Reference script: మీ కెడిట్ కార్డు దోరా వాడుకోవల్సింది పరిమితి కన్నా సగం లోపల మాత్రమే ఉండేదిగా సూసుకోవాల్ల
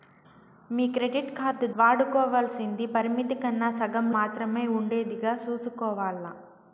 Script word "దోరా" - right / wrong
wrong